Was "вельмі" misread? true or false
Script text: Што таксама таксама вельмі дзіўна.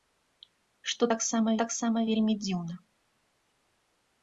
false